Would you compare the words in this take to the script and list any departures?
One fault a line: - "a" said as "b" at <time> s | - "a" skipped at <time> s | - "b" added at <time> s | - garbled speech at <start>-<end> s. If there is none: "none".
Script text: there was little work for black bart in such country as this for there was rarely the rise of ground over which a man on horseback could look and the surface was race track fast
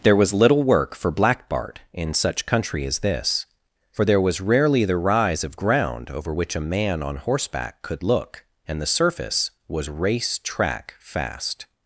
none